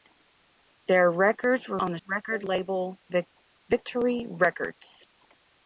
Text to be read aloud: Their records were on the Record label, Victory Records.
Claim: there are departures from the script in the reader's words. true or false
false